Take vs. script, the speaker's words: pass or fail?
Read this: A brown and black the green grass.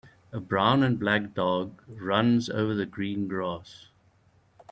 fail